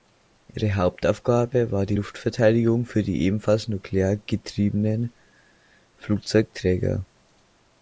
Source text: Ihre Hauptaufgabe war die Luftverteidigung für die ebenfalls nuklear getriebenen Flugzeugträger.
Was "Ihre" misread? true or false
false